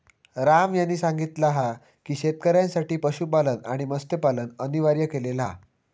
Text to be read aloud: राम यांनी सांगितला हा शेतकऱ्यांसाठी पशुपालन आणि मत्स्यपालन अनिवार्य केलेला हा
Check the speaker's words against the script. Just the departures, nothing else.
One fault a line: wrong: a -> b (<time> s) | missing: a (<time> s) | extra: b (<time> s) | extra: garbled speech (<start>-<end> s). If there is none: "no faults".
extra: की (2.0 s)